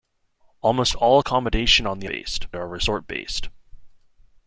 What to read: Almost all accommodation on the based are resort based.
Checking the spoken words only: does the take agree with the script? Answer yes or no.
yes